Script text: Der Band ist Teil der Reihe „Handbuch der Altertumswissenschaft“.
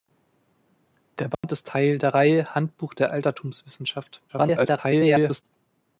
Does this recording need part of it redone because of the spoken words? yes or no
yes